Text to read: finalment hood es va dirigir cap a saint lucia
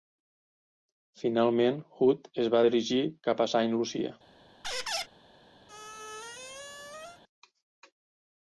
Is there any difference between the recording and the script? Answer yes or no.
no